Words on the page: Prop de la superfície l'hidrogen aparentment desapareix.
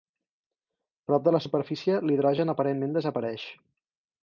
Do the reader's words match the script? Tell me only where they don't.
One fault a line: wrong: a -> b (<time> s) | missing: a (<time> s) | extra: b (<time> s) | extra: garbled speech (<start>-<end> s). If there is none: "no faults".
no faults